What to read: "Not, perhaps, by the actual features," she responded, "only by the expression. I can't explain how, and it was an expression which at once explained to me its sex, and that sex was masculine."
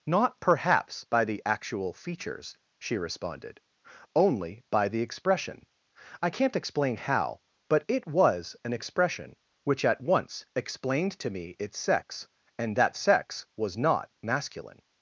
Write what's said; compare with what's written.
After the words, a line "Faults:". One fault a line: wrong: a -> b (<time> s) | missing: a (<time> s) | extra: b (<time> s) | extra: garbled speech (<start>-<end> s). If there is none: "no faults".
"Not, perhaps, by the actual features," she responded, "only by the expression. I can't explain how, but it was an expression which at once explained to me its sex, and that sex was not masculine."
Faults:
wrong: and -> but (7.7 s)
extra: not (13.8 s)